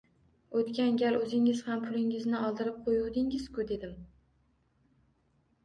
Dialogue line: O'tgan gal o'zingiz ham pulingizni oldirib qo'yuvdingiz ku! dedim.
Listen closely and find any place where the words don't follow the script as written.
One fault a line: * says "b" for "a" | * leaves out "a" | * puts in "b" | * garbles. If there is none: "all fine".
all fine